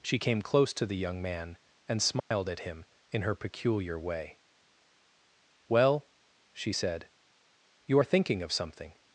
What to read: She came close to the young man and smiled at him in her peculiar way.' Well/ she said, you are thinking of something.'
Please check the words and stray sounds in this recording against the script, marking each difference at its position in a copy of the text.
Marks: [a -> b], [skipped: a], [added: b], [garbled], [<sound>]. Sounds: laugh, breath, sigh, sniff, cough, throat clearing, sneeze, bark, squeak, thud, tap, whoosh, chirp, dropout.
She came close to the young man and smiled [dropout] at him in her peculiar way.' Well/ she said, you are thinking of something.'